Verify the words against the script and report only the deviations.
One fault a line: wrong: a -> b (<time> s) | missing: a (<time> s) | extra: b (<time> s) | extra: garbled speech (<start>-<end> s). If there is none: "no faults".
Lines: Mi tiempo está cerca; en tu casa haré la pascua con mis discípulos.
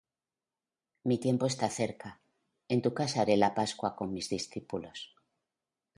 no faults